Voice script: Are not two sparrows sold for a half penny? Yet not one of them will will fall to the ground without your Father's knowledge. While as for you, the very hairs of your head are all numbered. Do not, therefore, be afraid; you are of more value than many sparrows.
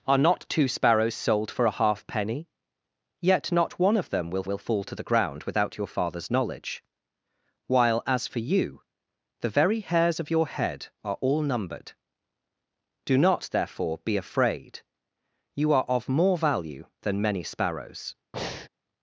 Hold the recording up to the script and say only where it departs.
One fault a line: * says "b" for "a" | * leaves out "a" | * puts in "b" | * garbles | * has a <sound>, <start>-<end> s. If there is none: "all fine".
* has a breath, 18.3-18.7 s